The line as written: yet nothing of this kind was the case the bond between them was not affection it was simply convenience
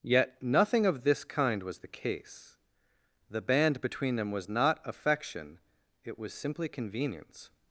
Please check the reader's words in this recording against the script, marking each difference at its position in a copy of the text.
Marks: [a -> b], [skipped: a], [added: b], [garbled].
yet nothing of this kind was the case the [bond -> band] between them was not affection it was simply convenience